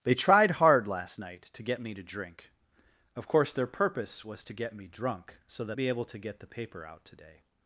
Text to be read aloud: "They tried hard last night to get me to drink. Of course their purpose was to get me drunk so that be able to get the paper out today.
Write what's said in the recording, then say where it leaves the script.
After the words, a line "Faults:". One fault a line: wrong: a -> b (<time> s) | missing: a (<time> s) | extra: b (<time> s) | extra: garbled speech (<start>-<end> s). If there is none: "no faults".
"They tried hard last night to get me to drink. Of course their purpose was to get me drunk so that be able to get the paper out today.
Faults:
no faults